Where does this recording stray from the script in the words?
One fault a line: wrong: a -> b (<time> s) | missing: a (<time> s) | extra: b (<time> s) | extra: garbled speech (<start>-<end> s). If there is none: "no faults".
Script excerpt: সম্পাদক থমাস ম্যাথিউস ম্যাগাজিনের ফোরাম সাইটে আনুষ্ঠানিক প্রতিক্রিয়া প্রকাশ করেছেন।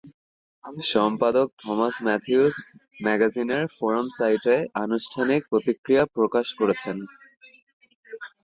no faults